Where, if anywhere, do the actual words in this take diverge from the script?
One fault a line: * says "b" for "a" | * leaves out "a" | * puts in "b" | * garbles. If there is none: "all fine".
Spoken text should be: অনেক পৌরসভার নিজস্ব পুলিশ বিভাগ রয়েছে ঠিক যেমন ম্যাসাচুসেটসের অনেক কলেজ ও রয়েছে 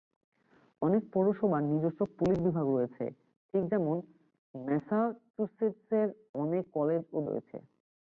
all fine